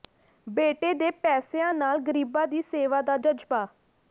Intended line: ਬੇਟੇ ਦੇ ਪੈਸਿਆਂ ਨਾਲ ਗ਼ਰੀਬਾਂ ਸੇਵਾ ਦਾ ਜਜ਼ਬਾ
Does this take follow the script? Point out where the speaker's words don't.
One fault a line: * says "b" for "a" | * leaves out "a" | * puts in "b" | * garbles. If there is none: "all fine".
* puts in "ਦੀ"